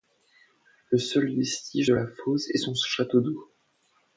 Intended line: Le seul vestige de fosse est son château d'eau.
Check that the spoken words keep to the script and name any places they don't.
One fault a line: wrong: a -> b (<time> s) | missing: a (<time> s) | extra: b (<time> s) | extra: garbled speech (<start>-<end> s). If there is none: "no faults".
extra: la (1.9 s)